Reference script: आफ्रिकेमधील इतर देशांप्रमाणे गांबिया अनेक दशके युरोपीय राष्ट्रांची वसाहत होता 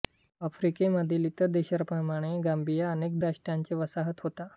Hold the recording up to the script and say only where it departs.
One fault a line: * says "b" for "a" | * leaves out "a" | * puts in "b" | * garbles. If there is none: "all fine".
* leaves out "दशके युरोपीय"